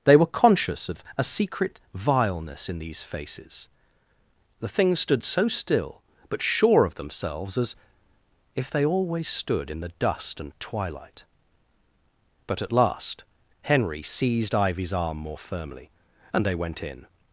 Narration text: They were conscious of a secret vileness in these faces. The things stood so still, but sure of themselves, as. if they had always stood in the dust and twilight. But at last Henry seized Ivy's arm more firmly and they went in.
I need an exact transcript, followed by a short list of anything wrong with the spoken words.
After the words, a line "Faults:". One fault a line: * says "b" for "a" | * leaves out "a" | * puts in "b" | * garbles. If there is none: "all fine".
They were conscious of a secret vileness in these faces. The things stood so still, but sure of themselves, as. if they always stood in the dust and twilight. But at last Henry seized Ivy's arm more firmly and they went in.
Faults:
* leaves out "had"